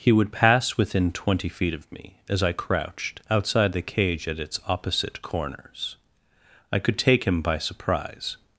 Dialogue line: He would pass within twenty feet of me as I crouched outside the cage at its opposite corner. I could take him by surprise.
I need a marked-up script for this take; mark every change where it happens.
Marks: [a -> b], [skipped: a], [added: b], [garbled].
He would pass within twenty feet of me as I crouched outside the cage at its opposite [corner. -> corners] I could take him by surprise.